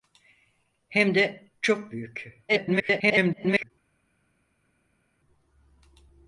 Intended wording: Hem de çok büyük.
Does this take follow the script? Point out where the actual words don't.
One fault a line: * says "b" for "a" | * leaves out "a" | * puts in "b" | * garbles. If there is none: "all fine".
* garbles